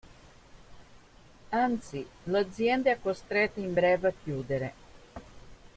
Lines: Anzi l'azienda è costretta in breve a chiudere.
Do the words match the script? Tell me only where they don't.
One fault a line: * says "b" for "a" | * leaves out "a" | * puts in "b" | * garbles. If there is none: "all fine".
all fine